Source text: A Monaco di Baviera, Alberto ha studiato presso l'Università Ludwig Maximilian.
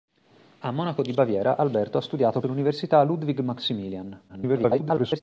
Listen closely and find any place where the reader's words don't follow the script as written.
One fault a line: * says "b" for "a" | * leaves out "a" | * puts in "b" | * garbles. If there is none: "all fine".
* leaves out "presso"
* garbles